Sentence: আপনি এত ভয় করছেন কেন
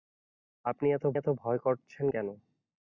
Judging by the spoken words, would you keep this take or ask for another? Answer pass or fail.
fail